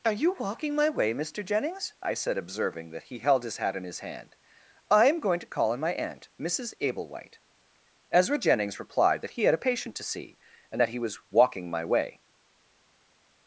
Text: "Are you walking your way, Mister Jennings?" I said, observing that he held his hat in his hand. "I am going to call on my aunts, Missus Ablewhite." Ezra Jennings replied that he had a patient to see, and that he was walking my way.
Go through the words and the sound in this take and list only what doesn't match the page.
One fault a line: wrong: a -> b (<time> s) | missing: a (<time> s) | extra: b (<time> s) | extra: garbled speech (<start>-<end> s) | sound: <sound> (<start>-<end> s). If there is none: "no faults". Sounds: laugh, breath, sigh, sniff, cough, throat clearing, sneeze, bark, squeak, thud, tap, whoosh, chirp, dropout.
wrong: your -> my (0.7 s)
wrong: aunts -> aunt (5.9 s)